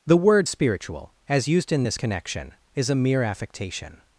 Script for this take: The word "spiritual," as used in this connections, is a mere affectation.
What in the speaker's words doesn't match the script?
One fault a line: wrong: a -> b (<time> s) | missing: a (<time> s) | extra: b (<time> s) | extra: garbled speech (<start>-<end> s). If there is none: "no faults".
wrong: connections -> connection (1.9 s)